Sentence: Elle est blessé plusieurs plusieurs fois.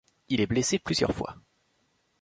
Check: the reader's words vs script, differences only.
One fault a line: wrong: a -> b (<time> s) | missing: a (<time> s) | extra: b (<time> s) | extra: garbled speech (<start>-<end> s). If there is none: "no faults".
wrong: Elle -> Il (0.3 s)
missing: plusieurs (1.1 s)